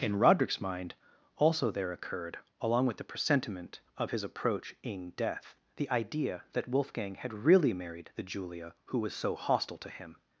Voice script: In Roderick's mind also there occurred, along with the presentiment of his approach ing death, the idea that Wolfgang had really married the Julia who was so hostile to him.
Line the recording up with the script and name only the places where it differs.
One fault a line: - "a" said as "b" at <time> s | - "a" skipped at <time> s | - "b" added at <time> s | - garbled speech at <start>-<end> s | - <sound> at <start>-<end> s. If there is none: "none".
none